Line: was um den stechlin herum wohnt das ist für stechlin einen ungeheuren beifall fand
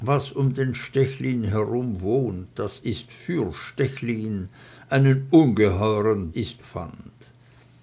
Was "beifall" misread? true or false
true